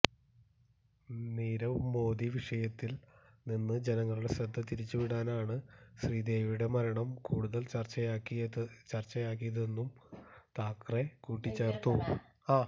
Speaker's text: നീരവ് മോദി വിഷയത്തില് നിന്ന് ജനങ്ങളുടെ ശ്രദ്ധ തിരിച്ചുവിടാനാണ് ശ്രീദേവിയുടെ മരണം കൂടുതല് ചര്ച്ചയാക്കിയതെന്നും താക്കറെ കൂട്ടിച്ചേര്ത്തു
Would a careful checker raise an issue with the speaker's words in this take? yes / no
no